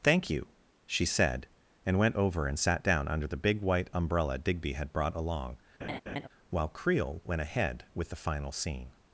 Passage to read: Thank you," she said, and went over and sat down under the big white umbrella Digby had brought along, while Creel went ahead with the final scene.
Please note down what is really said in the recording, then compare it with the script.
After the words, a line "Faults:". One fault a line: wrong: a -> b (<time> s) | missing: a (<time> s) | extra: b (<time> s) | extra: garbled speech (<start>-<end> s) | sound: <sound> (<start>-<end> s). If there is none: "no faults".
Thank you," she said, and went over and sat down under the big white umbrella Digby had brought along, while Creel went ahead with the final scene.
Faults:
sound: laugh (5.8-6.3 s)